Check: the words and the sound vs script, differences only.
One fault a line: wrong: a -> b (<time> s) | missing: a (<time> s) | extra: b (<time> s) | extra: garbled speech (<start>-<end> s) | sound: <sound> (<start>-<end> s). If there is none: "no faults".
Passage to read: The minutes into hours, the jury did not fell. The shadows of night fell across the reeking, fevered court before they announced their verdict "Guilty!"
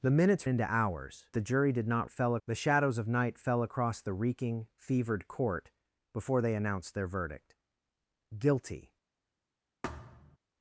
sound: thud (9.8-10.4 s)